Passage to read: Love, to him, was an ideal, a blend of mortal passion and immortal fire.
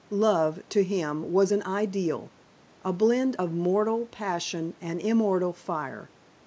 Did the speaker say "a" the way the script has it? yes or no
yes